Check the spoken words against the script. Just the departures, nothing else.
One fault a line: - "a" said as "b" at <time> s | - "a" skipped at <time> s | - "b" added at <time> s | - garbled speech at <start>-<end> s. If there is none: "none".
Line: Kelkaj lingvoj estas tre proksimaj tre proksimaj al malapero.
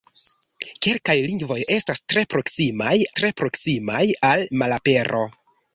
none